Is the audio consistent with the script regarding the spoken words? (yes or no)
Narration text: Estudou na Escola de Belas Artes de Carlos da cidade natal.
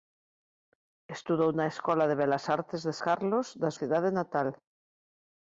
yes